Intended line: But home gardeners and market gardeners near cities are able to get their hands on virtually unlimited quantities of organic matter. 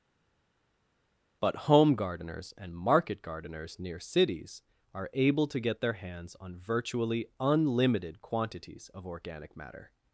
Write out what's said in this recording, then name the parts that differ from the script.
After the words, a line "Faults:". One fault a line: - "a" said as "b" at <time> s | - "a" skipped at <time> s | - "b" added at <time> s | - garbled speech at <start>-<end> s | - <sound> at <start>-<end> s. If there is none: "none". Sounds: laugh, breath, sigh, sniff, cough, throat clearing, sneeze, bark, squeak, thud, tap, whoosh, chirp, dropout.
But home gardeners and market gardeners near cities are able to get their hands on virtually unlimited quantities of organic matter.
Faults:
none